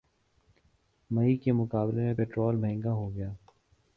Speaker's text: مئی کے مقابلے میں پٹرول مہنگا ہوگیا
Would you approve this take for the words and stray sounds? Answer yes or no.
yes